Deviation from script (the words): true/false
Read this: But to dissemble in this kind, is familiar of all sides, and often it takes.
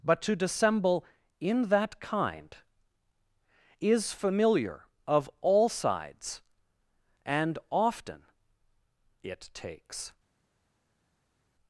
true